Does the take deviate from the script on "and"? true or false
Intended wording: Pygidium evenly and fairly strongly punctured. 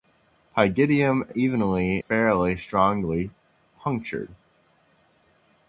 true